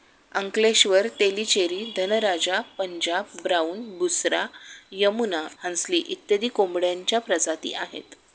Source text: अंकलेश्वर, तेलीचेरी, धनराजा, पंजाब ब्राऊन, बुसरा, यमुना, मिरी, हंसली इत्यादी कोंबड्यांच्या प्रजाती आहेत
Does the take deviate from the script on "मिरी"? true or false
true